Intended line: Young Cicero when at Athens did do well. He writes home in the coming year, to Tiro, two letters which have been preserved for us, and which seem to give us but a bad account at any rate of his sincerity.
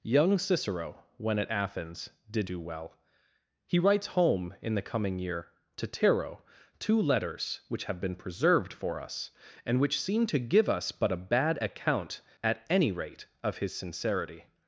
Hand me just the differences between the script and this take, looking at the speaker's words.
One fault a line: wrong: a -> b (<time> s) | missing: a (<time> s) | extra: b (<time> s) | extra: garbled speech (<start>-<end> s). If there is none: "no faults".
no faults